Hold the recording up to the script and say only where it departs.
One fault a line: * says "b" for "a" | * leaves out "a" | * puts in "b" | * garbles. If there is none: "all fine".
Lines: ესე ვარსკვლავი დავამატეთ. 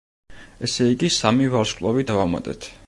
* puts in "იგი სამი"